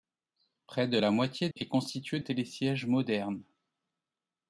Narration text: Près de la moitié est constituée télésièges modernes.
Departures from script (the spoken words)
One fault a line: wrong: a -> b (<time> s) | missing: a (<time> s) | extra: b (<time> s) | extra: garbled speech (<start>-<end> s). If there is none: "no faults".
no faults